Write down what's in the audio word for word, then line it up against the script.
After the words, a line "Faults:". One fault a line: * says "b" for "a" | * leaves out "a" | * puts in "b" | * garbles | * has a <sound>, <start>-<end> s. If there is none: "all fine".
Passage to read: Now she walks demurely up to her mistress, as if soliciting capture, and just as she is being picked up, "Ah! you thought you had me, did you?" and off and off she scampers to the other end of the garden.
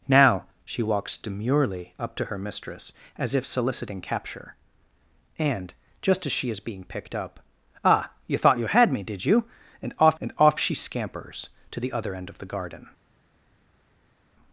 Now she walks demurely up to her mistress, as if soliciting capture, and just as she is being picked up, "Ah! you thought you had me, did you?" and off and off she scampers to the other end of the garden.
Faults:
all fine